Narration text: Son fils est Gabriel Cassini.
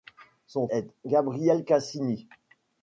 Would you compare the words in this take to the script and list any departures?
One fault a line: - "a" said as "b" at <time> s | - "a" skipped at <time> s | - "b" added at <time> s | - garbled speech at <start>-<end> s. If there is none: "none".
- "fils" skipped at 0.7 s